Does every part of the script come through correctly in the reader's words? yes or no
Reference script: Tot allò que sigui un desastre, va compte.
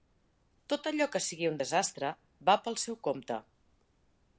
no